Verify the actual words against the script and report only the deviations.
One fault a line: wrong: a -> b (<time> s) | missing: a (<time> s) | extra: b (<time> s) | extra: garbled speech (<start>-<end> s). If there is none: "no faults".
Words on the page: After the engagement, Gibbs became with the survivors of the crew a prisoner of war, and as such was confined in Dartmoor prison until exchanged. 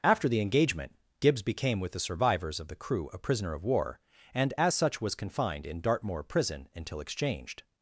no faults